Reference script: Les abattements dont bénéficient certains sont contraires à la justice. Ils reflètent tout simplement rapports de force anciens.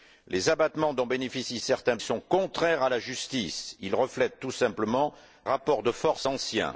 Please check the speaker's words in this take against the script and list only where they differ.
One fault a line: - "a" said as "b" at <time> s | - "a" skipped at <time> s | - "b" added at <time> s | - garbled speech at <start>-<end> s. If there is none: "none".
none